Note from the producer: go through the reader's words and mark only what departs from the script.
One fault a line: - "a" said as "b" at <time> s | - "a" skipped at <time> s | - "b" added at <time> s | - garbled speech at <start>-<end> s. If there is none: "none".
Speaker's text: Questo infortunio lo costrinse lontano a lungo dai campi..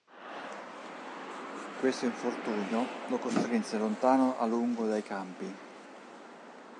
none